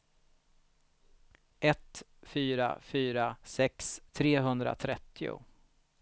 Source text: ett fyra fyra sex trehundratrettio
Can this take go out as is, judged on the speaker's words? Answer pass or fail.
pass